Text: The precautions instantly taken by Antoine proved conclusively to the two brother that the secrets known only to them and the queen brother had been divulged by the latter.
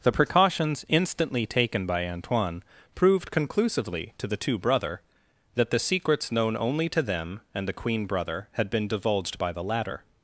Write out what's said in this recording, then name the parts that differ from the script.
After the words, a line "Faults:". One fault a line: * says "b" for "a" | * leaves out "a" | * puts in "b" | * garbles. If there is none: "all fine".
The precautions instantly taken by Antoine proved conclusively to the two brother that the secrets known only to them and the queen brother had been divulged by the latter.
Faults:
all fine